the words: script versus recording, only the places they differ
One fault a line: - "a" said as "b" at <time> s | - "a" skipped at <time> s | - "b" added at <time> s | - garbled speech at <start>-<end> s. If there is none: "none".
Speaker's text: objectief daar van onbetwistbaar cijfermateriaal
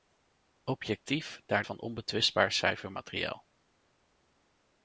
none